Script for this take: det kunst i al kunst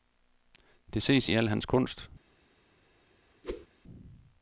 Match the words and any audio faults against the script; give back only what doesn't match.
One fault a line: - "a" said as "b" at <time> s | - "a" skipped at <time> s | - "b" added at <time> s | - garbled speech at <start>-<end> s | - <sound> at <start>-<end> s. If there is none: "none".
- "kunst" said as "ses" at 1.0 s
- "hans" added at 1.5 s
- whoosh at 3.4-3.7 s